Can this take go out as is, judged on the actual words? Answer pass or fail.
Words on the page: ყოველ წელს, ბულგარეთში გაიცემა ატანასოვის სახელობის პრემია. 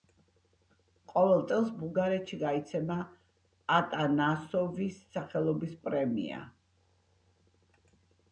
pass